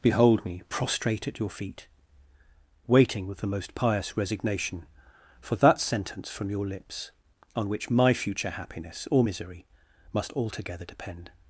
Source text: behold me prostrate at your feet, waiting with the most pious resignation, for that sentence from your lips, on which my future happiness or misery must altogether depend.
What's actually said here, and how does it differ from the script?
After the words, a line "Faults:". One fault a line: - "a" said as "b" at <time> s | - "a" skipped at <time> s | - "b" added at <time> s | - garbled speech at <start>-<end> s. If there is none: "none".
behold me prostrate at your feet, waiting with the most pious resignation, for that sentence from your lips, on which my future happiness or misery must altogether depend.
Faults:
none